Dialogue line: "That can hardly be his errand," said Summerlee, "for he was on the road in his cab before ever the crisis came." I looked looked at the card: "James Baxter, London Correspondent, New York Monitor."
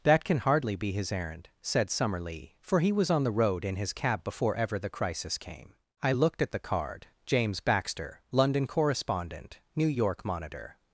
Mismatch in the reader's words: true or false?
true